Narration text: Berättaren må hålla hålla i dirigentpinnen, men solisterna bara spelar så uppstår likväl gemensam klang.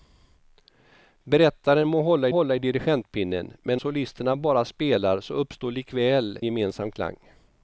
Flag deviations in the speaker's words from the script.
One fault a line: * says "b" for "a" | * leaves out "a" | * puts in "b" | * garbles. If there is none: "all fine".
all fine